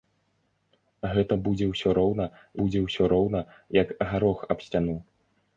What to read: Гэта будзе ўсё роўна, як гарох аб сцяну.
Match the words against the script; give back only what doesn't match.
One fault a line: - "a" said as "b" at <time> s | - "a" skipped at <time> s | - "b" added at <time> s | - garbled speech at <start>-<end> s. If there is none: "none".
- "будзе ўсё роўна" added at 2.6 s